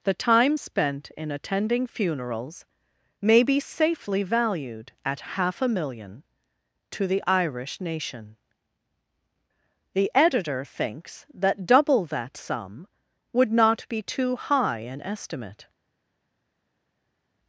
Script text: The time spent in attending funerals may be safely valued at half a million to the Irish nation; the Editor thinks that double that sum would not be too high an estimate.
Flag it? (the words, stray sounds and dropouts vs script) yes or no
no